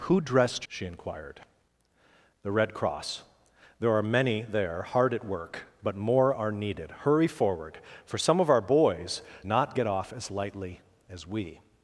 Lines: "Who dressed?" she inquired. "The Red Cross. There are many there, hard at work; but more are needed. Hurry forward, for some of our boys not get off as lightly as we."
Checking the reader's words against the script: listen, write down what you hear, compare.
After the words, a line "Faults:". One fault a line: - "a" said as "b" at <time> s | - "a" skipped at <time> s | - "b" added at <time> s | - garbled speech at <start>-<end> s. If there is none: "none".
"Who dressed?" she inquired. "The Red Cross. There are many there, hard at work; but more are needed. Hurry forward, for some of our boys not get off as lightly as we."
Faults:
none